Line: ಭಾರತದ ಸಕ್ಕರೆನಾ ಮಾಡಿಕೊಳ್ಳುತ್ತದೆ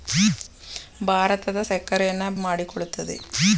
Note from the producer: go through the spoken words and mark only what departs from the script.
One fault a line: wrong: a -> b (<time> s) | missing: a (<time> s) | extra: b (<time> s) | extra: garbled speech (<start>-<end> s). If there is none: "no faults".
no faults